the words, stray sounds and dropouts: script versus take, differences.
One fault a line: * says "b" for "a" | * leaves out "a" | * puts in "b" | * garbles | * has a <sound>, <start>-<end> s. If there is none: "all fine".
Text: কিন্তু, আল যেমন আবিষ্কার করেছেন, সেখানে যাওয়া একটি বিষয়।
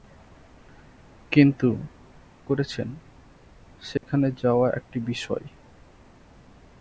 * leaves out "আল যেমন আবিষ্কার"
* has a dropout, 4.0-4.0 s